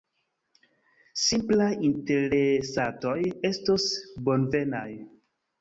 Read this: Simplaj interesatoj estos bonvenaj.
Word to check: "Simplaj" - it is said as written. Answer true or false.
true